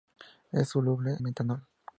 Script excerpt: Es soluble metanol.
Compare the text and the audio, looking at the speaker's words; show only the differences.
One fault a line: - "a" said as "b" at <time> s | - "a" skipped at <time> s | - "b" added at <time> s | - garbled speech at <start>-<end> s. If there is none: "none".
none